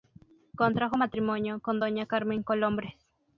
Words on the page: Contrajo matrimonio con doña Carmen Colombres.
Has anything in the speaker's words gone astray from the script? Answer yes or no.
no